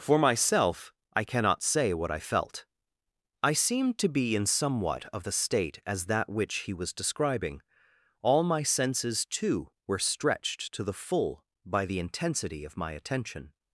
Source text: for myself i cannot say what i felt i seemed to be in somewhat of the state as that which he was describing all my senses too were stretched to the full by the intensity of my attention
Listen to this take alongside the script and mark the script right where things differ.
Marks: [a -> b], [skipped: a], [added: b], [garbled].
for myself i cannot say what i felt i seemed to be in somewhat of the state as that which he was describing all my senses too were stretched to the full by the intensity of my attention